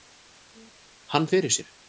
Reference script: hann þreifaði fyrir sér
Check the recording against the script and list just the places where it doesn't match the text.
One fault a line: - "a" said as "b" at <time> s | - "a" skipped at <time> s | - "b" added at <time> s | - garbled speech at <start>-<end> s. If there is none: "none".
- "þreifaði" skipped at 1.3 s